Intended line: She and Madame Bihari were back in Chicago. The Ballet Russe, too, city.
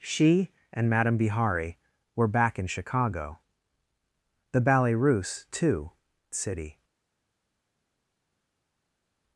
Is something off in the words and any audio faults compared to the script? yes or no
no